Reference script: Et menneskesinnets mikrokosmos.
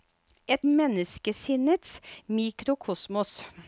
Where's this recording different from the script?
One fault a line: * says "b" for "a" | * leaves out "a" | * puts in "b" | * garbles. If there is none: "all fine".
all fine